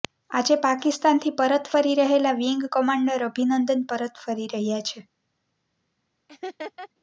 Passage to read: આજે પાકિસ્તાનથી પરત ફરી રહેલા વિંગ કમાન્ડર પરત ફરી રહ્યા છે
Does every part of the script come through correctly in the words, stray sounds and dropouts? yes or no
no